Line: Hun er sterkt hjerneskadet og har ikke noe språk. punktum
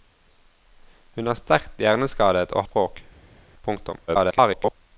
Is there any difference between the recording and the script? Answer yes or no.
yes